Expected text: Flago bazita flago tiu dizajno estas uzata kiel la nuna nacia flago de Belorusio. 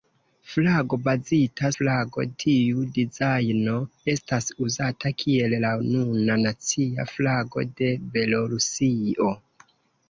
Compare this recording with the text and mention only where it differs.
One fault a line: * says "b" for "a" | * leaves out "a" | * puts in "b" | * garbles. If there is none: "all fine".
all fine